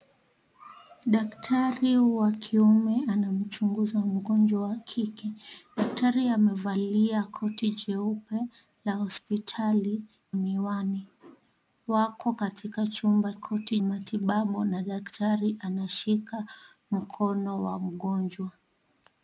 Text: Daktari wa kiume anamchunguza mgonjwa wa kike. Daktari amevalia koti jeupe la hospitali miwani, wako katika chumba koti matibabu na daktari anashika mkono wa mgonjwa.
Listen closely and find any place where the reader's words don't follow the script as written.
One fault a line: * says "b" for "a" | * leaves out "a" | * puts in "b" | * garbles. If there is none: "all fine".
all fine